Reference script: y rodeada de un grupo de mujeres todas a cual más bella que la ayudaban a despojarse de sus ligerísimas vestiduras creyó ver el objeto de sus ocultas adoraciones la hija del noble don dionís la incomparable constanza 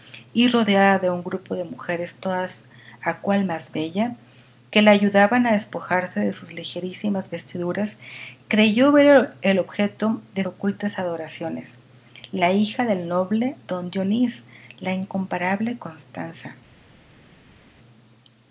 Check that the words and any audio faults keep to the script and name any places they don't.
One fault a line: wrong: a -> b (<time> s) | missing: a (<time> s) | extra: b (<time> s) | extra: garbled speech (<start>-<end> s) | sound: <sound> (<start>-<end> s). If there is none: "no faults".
missing: sus (10.4 s)